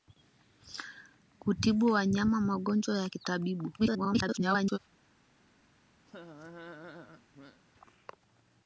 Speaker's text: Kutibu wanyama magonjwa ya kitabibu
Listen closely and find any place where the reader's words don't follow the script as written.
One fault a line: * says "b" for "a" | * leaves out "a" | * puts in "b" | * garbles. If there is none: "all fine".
* garbles